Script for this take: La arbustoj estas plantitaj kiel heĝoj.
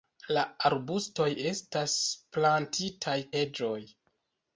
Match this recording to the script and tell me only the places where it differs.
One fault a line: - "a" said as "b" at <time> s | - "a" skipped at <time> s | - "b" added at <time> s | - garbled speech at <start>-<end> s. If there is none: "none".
- "kiel" skipped at 3.2 s